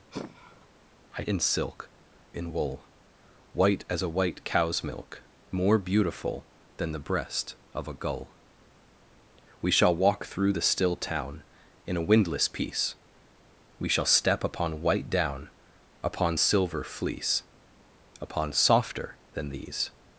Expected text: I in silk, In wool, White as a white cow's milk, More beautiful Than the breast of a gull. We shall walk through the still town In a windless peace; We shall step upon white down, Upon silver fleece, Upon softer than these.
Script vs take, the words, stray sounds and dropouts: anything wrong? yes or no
yes